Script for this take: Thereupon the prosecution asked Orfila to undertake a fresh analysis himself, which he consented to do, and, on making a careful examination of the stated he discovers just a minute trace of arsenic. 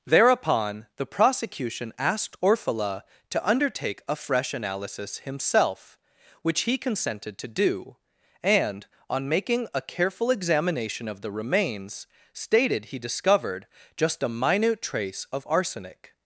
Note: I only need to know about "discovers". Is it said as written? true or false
false